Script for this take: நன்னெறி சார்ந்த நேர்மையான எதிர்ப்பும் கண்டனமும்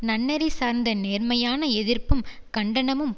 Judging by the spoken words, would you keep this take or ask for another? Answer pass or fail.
pass